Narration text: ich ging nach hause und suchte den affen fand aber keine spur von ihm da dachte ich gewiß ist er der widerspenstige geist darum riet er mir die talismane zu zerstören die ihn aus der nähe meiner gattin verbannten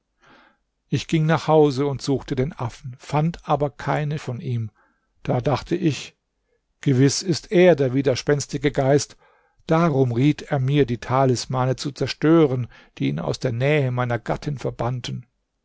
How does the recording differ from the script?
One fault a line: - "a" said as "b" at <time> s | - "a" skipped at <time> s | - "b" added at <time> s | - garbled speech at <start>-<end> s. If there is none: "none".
- "spur" skipped at 4.2 s